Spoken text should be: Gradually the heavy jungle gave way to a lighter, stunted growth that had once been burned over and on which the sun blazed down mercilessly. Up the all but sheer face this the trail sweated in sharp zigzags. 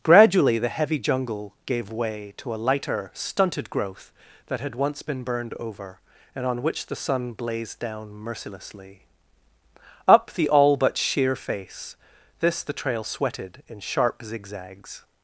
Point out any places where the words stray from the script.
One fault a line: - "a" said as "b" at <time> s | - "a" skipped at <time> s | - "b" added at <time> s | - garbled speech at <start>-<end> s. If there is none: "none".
none